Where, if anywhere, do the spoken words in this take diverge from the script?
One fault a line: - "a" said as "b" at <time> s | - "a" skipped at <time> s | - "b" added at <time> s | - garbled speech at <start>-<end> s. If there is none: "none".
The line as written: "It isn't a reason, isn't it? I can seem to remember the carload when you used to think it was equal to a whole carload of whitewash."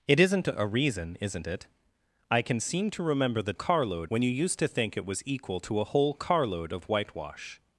none